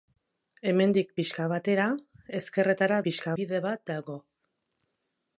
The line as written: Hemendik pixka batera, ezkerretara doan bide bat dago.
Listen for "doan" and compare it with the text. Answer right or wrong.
wrong